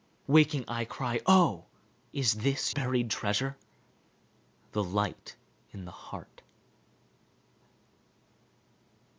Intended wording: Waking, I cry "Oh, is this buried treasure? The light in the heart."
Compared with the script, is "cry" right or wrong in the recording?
right